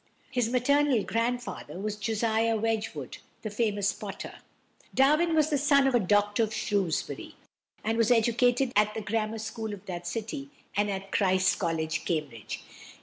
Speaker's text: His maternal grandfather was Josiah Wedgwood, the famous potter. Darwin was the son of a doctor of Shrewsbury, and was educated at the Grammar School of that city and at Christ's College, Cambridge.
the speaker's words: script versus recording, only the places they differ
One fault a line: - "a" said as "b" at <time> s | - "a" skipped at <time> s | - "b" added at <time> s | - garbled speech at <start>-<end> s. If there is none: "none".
none